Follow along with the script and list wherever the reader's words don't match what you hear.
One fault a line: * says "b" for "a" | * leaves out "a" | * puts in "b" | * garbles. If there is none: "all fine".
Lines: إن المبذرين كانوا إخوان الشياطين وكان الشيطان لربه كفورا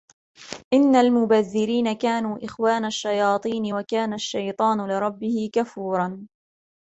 all fine